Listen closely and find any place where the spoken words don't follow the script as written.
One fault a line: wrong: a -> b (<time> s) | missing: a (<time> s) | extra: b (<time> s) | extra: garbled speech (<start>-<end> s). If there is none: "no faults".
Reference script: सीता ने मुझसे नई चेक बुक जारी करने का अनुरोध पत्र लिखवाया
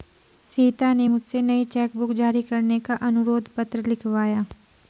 no faults